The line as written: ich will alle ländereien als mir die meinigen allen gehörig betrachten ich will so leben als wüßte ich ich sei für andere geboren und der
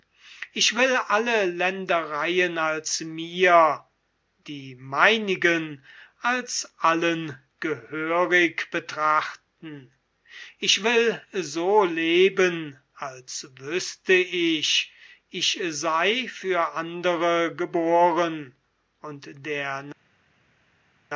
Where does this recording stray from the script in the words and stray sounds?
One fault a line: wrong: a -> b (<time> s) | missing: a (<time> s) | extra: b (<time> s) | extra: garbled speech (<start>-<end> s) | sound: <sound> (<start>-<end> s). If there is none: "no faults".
extra: als (6.2 s)